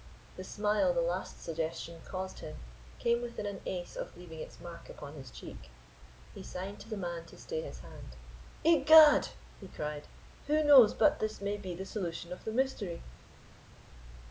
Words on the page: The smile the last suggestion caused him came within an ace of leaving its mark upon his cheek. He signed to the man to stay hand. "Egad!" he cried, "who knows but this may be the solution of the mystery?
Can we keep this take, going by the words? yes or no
no